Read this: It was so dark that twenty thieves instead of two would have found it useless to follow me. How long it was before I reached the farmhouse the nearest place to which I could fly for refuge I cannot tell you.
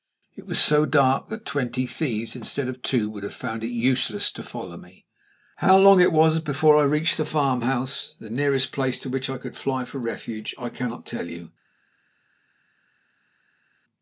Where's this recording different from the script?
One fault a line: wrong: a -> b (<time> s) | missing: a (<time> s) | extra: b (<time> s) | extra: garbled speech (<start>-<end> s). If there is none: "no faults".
no faults